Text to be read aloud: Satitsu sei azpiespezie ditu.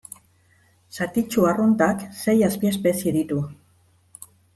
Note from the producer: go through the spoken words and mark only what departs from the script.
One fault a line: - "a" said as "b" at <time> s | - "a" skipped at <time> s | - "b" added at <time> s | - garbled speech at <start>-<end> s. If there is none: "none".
- "arruntak" added at 1.5 s